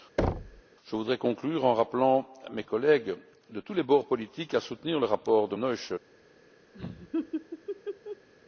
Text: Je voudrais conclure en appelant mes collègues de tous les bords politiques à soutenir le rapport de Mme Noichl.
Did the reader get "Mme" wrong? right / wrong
wrong